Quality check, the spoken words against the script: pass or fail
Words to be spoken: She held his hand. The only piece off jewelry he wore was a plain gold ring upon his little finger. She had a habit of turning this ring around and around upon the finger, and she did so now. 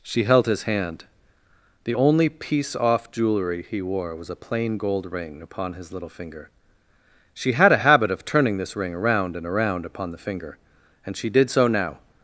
pass